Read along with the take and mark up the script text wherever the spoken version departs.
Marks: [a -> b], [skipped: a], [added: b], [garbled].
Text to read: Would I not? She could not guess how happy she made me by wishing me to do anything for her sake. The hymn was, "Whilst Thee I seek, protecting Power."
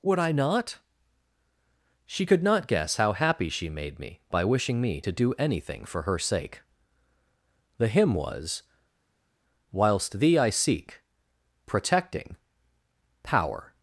Would I not? She could not guess how happy she made me by wishing me to do anything for her sake. The hymn was, "Whilst Thee I seek, protecting Power."